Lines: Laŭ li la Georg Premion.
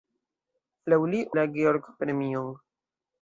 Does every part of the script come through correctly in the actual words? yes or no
yes